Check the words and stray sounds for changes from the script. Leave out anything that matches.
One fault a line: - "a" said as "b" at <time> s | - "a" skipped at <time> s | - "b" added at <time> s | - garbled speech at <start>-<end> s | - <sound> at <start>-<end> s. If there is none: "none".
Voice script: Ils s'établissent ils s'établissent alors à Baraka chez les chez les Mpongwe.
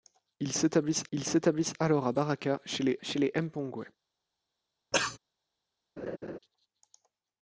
- cough at 4.9-5.2 s
- laugh at 6.0-6.4 s